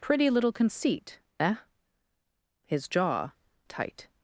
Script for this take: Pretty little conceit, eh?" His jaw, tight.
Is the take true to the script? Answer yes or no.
yes